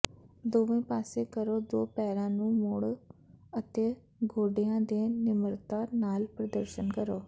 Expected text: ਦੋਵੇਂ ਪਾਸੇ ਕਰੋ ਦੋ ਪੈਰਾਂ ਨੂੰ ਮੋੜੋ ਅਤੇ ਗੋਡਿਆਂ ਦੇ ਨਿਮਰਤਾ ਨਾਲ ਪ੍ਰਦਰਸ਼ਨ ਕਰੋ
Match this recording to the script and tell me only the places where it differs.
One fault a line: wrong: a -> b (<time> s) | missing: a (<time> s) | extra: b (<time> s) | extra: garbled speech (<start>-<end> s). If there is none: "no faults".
no faults